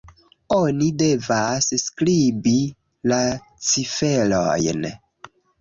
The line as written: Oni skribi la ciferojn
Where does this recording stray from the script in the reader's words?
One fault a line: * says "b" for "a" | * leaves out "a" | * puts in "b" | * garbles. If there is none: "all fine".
* puts in "devas"